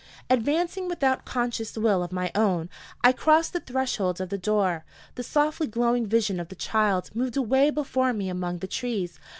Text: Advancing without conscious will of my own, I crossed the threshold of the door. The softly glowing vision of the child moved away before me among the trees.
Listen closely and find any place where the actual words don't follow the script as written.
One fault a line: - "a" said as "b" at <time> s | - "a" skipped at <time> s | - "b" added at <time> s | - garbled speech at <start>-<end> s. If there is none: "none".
none